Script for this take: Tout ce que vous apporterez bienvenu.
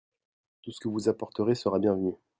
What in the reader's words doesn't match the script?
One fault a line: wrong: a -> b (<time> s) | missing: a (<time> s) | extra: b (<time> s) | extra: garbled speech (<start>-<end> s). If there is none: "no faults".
extra: sera (1.6 s)